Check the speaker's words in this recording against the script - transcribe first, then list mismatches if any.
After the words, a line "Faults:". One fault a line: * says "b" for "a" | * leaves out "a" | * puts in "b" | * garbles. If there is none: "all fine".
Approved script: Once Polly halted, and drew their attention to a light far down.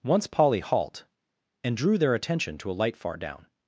Once Polly halt, and drew their attention to a light far down.
Faults:
* says "halt" for "halted"